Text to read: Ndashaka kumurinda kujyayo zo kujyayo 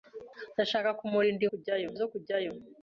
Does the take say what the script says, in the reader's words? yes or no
yes